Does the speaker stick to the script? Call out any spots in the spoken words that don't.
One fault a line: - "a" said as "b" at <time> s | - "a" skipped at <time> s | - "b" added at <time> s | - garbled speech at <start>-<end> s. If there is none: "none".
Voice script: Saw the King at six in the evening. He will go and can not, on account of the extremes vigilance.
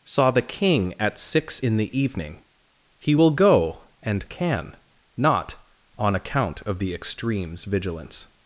none